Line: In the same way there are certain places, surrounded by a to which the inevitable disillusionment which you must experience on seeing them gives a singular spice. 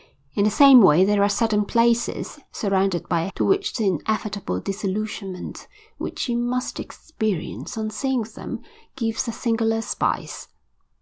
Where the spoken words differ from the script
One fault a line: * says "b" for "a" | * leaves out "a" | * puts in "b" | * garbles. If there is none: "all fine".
all fine